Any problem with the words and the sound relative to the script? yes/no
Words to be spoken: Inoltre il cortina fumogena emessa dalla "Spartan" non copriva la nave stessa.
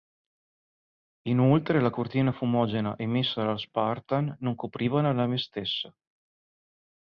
yes